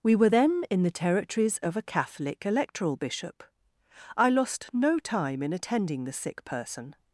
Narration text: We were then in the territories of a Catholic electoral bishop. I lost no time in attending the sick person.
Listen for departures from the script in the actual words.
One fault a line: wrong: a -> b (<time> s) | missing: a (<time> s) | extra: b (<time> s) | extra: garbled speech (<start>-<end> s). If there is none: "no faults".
no faults